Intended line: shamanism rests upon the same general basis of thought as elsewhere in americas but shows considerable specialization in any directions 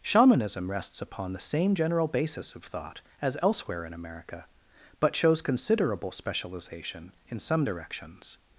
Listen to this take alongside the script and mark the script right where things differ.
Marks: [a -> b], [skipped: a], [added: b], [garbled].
shamanism rests upon the same general basis of thought as elsewhere in [americas -> america] but shows considerable specialization in [any -> some] directions